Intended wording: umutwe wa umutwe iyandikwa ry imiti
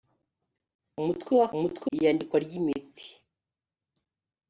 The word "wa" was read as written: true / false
true